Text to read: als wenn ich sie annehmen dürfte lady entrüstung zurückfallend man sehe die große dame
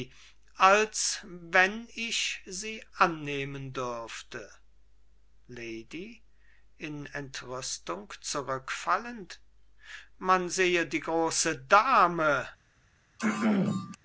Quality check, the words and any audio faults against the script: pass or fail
fail